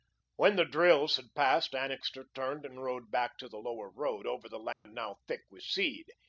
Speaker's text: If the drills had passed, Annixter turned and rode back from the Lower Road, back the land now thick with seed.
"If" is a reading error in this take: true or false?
true